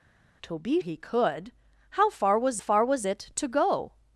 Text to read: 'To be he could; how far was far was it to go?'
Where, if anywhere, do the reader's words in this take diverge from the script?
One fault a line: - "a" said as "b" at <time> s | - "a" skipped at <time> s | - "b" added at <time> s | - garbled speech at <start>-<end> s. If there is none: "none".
none